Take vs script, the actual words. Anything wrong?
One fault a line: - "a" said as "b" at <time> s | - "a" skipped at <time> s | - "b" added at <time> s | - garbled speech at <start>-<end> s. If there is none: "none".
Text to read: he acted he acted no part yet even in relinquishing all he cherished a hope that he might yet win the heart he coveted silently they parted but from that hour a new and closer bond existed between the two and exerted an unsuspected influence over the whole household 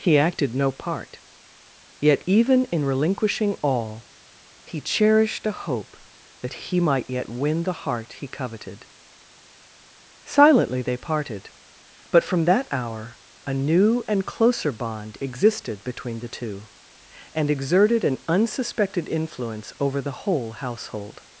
- "he acted" skipped at 0.6 s